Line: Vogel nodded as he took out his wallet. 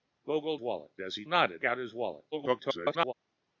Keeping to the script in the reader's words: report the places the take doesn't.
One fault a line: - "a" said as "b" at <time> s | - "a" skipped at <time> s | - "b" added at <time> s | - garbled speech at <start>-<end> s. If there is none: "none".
- "nodded" said as "wallet" at 0.6 s
- "took" said as "nodded" at 1.2 s
- garbled speech at 2.3-3.1 s